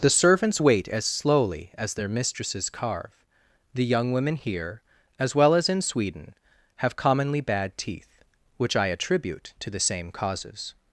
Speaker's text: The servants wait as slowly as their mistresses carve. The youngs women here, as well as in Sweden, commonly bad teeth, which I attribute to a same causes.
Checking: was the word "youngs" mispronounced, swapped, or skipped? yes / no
yes